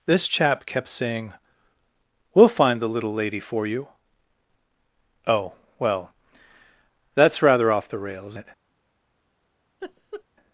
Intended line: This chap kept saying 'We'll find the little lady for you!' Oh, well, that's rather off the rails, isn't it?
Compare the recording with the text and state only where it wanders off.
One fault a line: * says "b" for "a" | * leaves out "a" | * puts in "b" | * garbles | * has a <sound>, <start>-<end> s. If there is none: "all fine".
* leaves out "isn't"
* has a laugh, 9.8-10.2 s